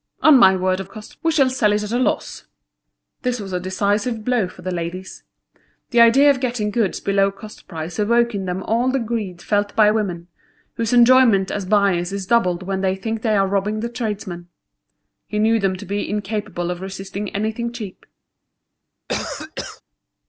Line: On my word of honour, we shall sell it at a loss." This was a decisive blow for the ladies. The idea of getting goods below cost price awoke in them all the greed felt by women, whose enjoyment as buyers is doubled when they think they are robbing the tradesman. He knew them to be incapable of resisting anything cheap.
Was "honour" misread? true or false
true